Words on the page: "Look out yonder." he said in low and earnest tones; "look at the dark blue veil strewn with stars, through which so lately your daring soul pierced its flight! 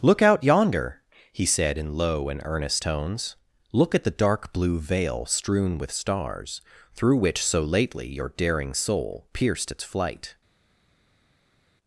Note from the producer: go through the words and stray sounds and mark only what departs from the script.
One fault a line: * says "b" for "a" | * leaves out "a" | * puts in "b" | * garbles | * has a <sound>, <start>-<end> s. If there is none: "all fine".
all fine